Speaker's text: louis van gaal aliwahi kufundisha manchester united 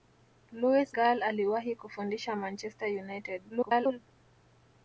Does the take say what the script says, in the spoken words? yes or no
no